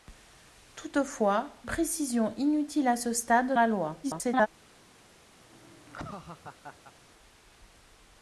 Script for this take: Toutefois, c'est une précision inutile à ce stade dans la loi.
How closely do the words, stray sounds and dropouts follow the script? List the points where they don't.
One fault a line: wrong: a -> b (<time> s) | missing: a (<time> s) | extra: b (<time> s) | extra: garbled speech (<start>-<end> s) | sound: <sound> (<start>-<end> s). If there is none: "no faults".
missing: c'est une (1.6 s)
missing: dans (3.6 s)
extra: garbled speech (4.0-4.5 s)
sound: laugh (5.4-6.9 s)